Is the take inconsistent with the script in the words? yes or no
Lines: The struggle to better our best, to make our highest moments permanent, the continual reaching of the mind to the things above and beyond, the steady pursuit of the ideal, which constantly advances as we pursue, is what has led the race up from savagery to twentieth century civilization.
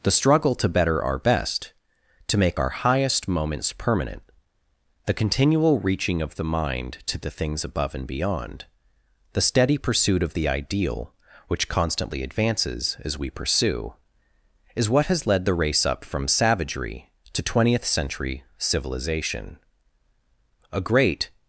yes